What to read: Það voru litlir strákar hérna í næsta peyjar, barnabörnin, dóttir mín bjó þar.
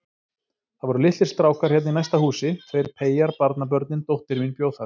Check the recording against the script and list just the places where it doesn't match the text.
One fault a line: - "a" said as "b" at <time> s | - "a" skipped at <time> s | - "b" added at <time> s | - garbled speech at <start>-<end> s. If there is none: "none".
- "húsi tveir" added at 2.2 s